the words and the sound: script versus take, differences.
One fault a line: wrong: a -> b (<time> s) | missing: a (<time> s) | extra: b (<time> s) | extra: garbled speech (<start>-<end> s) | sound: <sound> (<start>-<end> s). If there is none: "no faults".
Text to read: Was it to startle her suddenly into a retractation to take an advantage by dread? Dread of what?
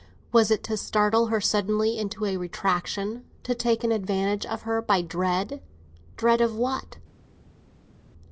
extra: of her (4.5 s)